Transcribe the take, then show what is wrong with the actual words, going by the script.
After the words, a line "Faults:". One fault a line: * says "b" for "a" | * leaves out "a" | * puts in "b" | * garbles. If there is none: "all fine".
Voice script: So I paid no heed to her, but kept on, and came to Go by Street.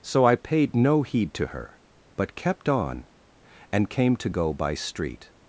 So I paid no heed to her, but kept on, and came to Go by Street.
Faults:
all fine